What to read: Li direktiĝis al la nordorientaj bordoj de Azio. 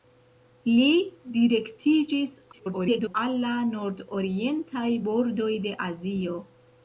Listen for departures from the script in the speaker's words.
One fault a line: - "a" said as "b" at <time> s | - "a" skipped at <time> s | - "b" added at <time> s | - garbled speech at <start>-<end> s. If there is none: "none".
- garbled speech at 2.5-3.1 s